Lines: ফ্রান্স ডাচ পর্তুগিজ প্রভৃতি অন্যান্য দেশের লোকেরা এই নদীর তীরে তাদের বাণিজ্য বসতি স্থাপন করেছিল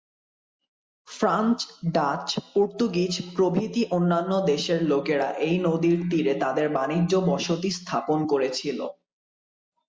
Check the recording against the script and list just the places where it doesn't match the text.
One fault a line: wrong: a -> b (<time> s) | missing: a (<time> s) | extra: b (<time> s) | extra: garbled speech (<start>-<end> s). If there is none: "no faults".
no faults